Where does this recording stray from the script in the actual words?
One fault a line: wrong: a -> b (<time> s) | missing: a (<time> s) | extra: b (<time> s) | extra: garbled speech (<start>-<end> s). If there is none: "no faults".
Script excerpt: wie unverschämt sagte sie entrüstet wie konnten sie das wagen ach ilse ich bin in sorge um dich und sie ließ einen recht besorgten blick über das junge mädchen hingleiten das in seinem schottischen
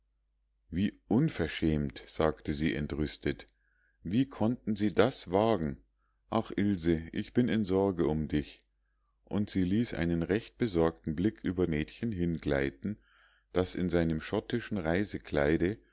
missing: das junge (11.7 s)